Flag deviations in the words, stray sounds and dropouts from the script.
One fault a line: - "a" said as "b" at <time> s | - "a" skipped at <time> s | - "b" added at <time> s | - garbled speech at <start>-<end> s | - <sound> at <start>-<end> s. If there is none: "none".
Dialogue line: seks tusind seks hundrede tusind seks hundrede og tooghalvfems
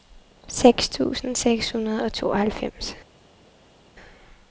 - "tusind seks hundrede" skipped at 2.0 s